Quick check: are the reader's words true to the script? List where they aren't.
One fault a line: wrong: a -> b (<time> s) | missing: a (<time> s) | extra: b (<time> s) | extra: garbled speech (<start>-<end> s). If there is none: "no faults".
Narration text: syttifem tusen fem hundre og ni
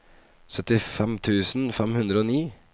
no faults